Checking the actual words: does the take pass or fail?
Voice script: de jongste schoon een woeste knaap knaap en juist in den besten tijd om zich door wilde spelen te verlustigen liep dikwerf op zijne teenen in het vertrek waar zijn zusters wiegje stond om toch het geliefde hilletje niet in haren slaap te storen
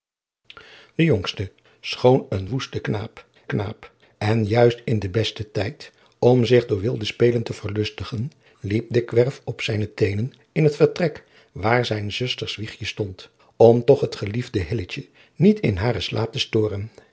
pass